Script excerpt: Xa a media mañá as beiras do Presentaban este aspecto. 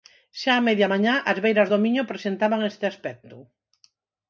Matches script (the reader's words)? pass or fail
fail